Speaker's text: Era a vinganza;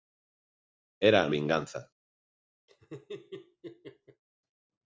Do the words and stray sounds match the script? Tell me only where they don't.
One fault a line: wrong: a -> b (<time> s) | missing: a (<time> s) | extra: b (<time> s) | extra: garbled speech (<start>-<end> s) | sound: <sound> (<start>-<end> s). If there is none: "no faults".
sound: laugh (2.7-4.2 s)